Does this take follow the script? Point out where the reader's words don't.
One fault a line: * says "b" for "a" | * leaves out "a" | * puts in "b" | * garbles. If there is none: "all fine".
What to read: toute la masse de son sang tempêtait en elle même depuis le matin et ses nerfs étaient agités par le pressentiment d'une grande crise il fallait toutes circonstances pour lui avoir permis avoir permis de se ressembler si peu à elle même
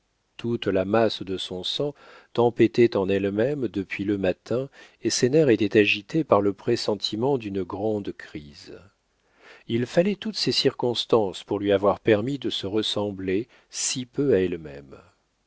* puts in "ces"
* leaves out "avoir permis"